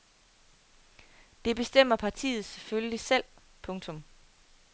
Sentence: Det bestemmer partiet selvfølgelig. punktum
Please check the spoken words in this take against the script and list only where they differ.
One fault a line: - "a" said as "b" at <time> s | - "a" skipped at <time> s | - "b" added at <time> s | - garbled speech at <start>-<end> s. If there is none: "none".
- "selv" added at 3.0 s